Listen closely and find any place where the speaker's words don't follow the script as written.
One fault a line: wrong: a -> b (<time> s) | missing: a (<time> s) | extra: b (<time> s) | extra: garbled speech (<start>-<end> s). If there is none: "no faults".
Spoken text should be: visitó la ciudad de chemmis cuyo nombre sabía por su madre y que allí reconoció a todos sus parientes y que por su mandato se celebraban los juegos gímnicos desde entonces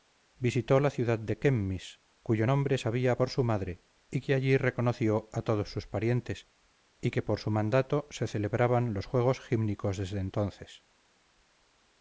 no faults